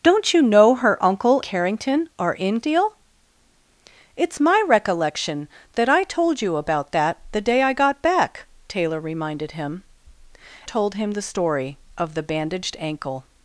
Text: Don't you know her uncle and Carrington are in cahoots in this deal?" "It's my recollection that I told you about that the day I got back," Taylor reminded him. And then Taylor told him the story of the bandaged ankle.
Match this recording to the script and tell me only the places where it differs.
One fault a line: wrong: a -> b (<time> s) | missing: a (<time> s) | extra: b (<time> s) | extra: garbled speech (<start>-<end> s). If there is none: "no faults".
missing: and (1.4 s)
missing: cahoots in this (2.6 s)
missing: And then Taylor (9.8 s)